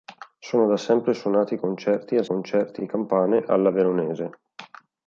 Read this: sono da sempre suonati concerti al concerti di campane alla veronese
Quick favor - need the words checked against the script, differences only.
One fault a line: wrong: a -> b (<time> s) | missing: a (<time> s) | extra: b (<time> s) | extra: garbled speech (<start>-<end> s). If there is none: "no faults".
no faults